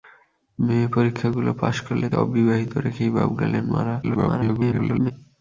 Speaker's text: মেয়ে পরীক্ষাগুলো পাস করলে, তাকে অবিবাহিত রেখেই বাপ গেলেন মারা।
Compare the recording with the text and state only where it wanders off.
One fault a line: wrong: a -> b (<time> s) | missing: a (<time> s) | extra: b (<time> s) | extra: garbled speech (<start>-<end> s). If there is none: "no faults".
missing: তাকে (2.1 s)
extra: garbled speech (4.0-5.1 s)